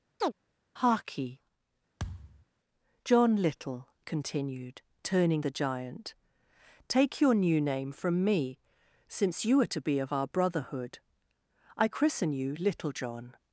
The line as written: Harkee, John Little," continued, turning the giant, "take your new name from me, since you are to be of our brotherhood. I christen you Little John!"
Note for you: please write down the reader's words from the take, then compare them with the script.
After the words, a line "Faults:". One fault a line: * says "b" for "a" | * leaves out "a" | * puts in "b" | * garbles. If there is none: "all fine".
Harkee, John Little," continued, turning the giant, "take your new name from me, since you are to be of our brotherhood. I christen you Little John!"
Faults:
all fine